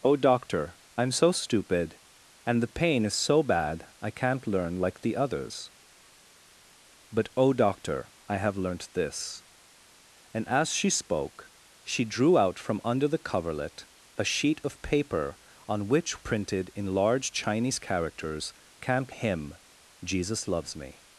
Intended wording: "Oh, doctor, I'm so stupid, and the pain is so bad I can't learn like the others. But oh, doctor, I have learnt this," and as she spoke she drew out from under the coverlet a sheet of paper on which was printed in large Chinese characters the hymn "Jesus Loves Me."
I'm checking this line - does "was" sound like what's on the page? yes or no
no